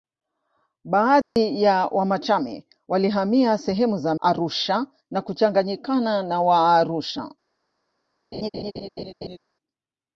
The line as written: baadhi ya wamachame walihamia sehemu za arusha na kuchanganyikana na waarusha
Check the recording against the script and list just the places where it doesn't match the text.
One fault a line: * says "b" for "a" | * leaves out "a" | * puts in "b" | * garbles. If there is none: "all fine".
all fine